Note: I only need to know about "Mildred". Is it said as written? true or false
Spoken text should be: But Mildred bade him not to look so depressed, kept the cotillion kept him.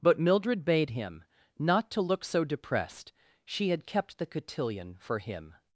true